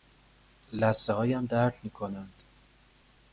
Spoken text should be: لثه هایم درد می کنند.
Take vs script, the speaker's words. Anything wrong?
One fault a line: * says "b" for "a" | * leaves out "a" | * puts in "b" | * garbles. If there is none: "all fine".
all fine